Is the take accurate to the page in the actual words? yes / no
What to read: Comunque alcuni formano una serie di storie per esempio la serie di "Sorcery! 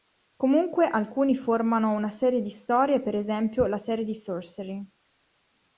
yes